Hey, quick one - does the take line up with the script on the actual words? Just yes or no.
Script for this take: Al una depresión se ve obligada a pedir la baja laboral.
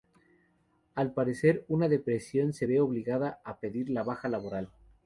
no